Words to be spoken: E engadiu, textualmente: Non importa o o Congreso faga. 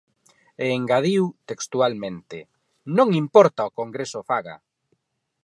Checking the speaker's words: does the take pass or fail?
pass